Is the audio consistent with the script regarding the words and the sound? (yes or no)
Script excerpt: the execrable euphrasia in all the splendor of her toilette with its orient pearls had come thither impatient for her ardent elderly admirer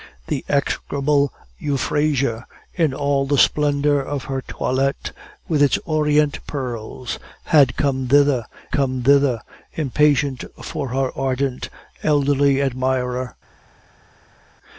no